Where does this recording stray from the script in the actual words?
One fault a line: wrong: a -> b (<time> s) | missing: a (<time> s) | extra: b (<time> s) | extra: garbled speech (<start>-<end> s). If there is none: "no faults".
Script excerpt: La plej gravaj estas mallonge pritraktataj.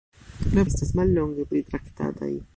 missing: plej gravaj (0.6 s)